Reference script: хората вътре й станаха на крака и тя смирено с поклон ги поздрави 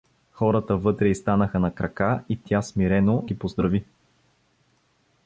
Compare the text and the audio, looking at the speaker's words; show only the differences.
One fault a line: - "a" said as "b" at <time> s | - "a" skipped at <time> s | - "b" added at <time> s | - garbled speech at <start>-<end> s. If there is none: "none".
- "с поклон" skipped at 3.3 s